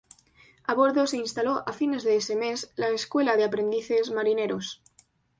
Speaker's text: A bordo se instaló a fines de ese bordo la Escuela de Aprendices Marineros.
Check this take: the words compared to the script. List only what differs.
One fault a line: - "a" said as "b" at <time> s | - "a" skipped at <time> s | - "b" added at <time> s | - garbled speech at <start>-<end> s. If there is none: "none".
- "bordo" said as "mes" at 2.4 s